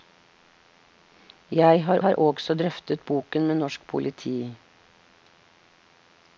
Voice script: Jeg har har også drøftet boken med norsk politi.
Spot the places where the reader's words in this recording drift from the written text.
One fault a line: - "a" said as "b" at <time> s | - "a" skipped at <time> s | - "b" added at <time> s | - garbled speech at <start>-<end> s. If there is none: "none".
none